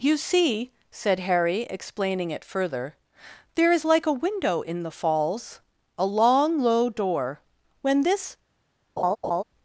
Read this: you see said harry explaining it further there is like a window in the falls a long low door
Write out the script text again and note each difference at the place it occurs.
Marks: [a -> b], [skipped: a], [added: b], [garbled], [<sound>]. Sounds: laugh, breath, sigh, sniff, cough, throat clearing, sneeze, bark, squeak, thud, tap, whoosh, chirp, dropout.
you see said harry explaining it further there is like a window in the falls a long low door [added: when this] [laugh]